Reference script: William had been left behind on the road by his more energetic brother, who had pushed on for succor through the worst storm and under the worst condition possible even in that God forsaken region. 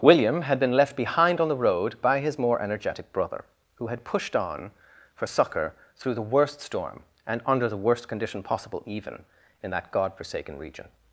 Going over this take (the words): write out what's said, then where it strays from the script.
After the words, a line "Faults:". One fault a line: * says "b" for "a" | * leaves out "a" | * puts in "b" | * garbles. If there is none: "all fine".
William had been left behind on the road by his more energetic brother, who had pushed on for succor through the worst storm and under the worst condition possible even in that God forsaken region.
Faults:
all fine